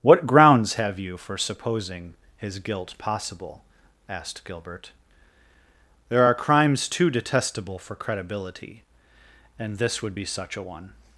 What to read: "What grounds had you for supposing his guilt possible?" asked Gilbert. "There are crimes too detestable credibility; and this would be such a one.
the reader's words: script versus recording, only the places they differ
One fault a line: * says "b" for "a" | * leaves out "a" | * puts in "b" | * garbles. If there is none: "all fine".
* says "have" for "had"
* puts in "for"